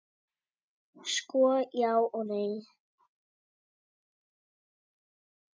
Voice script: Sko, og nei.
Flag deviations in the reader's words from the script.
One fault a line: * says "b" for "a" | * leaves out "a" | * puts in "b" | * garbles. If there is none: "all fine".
* puts in "já"